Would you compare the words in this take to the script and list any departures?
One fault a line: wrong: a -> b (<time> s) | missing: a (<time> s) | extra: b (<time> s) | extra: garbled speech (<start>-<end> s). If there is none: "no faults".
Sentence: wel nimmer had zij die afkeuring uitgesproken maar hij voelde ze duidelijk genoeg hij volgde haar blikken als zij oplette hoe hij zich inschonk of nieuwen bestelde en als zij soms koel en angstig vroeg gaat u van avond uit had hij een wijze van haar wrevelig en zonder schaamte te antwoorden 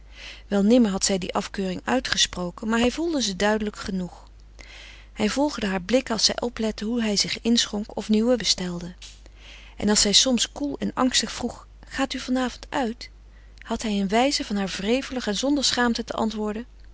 no faults